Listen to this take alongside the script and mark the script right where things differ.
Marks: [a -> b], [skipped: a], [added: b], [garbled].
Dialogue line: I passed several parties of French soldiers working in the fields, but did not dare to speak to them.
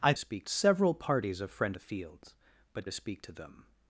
I [passed -> speak] several parties of French [skipped: soldiers working in] the fields, but [skipped: did not dare] to speak to them.